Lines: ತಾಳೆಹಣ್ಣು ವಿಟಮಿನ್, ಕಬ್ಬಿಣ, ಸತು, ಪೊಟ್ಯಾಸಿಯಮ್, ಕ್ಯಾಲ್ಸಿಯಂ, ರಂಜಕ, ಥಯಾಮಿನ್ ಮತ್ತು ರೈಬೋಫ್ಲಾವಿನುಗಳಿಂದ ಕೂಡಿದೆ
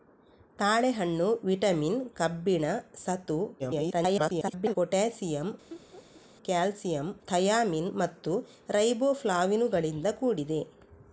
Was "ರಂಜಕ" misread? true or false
true